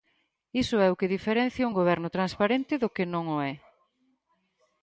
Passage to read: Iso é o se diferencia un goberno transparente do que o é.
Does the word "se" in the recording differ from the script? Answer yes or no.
yes